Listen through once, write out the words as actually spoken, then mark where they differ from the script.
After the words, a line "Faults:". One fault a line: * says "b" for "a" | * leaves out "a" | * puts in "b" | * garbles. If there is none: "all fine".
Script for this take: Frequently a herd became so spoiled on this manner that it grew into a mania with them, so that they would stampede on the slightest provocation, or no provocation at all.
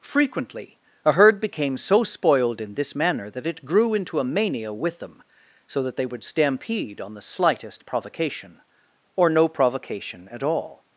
Frequently a herd became so spoiled in this manner that it grew into a mania with them, so that they would stampede on the slightest provocation, or no provocation at all.
Faults:
* says "in" for "on"